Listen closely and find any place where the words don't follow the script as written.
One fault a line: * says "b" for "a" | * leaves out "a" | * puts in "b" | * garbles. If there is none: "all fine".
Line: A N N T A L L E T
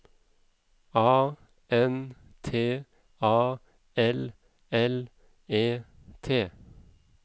* leaves out "N"